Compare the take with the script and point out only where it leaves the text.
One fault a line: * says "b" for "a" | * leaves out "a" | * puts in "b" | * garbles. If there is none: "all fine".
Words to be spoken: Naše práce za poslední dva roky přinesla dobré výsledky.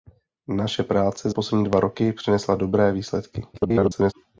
* leaves out "za"
* garbles